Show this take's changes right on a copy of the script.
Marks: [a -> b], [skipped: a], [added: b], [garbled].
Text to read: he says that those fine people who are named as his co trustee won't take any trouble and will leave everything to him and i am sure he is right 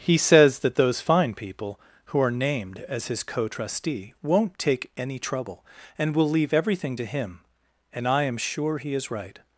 he says that those fine people who are named as his co trustee won't take any trouble and will leave everything to him and i am sure he is right